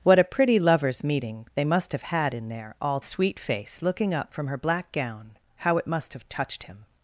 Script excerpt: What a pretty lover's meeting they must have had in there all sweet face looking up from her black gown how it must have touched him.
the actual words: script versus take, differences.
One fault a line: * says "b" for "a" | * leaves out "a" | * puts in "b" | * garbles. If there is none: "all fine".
all fine